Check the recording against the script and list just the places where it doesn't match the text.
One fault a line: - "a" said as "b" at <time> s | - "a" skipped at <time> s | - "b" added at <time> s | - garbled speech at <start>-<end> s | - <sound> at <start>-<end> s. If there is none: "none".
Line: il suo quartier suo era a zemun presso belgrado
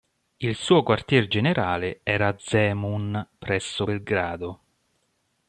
- "suo" said as "generale" at 1.3 s